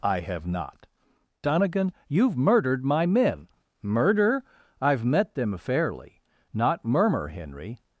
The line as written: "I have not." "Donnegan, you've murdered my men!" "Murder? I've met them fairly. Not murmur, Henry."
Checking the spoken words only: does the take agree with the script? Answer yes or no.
yes